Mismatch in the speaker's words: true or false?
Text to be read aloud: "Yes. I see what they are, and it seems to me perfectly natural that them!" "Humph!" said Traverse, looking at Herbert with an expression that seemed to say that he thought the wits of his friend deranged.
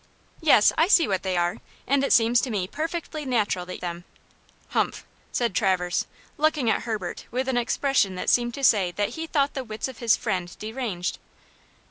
false